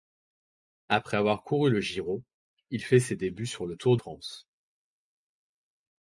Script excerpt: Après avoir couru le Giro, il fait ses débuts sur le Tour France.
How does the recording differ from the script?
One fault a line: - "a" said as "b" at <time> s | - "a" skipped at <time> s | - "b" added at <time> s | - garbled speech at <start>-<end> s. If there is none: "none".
none